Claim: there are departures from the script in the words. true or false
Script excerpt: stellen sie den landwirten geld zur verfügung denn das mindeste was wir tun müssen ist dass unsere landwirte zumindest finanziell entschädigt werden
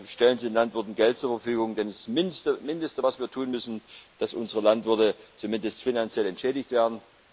false